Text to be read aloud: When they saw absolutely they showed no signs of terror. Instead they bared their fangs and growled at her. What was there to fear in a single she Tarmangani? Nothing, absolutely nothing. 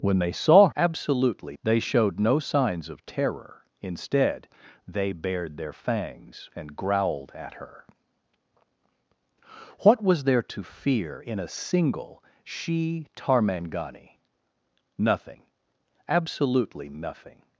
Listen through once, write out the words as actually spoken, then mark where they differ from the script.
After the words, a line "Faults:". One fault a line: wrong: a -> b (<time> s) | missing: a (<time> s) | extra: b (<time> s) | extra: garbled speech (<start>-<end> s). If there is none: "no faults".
When they saw absolutely they showed no signs of terror. Instead they bared their fangs and growled at her. What was there to fear in a single she Tarmangani? Nothing, absolutely nothing.
Faults:
no faults